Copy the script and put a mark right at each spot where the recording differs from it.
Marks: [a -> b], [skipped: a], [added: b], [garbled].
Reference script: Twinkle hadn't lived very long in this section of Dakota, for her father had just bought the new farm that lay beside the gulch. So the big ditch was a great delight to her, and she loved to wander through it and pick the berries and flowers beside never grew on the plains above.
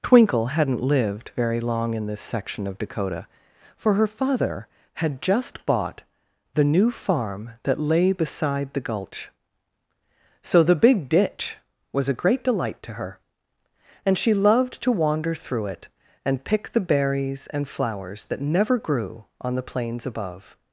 Twinkle hadn't lived very long in this section of Dakota, for her father had just bought the new farm that lay beside the gulch. So the big ditch was a great delight to her, and she loved to wander through it and pick the berries and flowers [beside -> that] never grew on the plains above.